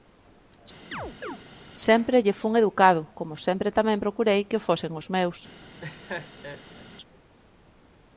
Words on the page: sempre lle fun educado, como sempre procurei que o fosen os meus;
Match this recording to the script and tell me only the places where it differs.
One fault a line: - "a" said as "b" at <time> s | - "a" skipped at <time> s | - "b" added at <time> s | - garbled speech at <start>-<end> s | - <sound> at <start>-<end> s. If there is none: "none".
- chirp at 0.9-1.4 s
- "tamén" added at 3.8 s
- laugh at 5.8-6.9 s